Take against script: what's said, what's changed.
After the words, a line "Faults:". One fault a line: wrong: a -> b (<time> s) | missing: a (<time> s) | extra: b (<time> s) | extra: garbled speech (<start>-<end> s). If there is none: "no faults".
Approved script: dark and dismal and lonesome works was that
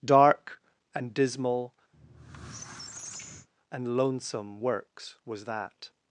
dark and dismal and lonesome works was that
Faults:
no faults